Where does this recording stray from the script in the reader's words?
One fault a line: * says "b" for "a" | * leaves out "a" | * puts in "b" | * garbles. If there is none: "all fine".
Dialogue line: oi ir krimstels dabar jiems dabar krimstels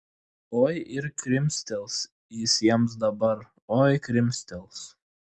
* says "jis" for "dabar"
* puts in "oi"